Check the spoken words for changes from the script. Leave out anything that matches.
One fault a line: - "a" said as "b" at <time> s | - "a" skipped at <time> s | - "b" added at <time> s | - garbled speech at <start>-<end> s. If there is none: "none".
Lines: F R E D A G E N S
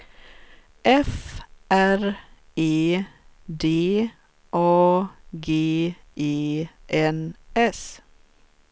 none